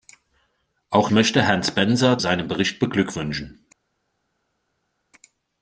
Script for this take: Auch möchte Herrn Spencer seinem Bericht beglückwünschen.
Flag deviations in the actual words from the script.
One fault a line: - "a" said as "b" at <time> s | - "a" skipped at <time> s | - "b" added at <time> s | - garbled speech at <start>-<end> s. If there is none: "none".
none